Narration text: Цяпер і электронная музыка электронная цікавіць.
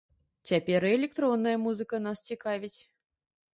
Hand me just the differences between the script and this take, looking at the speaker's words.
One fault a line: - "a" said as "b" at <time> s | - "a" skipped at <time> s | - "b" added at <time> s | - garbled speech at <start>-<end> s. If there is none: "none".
- "электронная" said as "нас" at 2.1 s